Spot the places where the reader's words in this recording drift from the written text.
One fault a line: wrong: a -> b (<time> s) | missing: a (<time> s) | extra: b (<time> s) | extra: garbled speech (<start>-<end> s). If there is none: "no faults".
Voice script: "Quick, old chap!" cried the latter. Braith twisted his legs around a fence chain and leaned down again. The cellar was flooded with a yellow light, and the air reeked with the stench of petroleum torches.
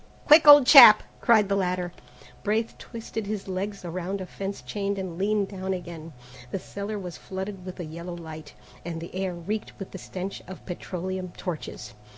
no faults